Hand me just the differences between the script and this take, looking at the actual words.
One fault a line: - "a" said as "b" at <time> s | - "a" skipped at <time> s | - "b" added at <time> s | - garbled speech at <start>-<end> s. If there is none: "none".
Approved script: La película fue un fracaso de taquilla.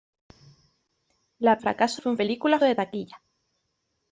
- "película" said as "fracaso" at 1.6 s
- "fracaso" said as "película" at 2.2 s